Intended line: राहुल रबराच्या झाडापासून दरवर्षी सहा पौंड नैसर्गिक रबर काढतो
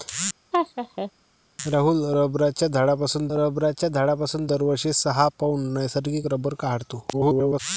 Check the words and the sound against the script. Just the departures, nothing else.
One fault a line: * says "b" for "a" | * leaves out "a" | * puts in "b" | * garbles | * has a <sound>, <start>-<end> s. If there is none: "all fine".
* has a laugh, 0.5-1.1 s
* puts in "रबराच्या झाडापासून"
* garbles